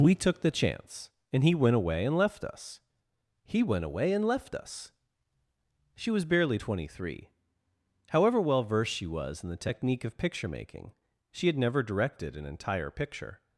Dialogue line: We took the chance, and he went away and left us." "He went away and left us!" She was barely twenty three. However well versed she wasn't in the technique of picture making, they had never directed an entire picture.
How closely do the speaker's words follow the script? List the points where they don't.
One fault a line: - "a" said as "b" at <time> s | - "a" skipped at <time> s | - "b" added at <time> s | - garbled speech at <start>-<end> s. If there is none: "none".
- "wasn't" said as "was" at 9.1 s
- "they" said as "she" at 11.3 s